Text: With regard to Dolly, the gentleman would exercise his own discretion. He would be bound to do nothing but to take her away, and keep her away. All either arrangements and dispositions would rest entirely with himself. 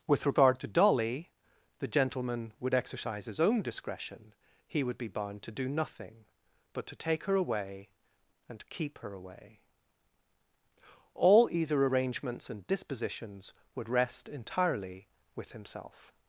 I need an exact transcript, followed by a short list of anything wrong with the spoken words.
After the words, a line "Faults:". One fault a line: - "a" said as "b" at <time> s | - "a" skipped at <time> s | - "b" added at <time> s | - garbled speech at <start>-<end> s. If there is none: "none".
With regard to Dolly, the gentleman would exercise his own discretion. He would be bound to do nothing but to take her away, and keep her away. All either arrangements and dispositions would rest entirely with himself.
Faults:
none